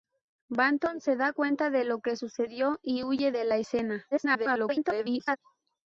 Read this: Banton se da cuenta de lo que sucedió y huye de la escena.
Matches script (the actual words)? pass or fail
fail